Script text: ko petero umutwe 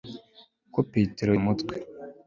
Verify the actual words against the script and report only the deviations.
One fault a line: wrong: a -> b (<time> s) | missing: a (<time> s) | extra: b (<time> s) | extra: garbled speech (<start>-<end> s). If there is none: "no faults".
no faults